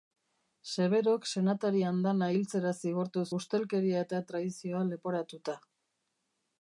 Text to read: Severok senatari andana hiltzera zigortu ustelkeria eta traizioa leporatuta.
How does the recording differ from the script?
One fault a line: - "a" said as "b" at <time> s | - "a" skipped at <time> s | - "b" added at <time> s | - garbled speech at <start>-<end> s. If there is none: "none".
none